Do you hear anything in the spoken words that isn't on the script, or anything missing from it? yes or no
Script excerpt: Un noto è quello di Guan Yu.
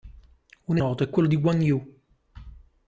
no